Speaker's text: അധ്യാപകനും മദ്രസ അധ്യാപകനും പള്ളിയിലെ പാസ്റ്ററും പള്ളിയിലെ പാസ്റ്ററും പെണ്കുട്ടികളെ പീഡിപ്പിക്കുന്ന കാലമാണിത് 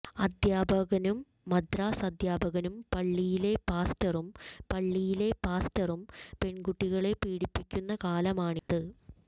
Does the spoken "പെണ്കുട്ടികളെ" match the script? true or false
true